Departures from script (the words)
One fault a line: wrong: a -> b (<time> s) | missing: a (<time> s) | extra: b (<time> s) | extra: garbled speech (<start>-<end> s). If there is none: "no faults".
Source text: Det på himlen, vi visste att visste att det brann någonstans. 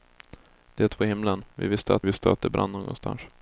no faults